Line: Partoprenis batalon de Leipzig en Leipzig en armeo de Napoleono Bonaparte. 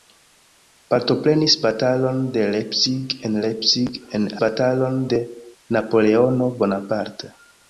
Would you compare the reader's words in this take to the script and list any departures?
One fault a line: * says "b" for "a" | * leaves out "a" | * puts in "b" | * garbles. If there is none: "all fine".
* says "batalon" for "armeo"